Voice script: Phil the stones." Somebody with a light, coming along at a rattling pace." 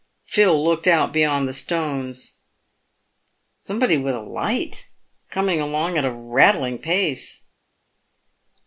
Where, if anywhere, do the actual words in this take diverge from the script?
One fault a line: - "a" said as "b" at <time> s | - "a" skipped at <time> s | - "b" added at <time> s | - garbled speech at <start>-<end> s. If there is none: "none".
- "looked out beyond" added at 0.6 s